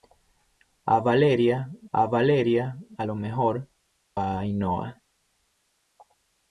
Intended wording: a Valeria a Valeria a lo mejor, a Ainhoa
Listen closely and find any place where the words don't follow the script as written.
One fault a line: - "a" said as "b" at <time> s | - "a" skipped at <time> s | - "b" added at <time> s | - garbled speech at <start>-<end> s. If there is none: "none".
none